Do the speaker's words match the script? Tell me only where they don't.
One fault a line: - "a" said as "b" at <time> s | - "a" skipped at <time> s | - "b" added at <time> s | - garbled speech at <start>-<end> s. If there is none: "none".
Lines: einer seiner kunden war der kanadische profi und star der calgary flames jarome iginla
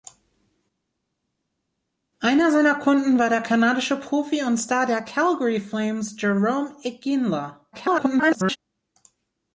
- garbled speech at 7.7-8.6 s